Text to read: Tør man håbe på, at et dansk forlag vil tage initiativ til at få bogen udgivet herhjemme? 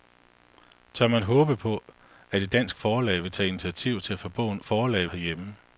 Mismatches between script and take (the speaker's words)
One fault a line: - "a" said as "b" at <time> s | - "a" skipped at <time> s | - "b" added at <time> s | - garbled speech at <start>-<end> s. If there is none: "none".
- "udgivet" said as "forlag" at 4.6 s